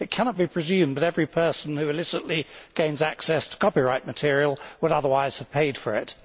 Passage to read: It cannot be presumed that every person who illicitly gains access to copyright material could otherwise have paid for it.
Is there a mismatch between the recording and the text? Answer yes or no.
yes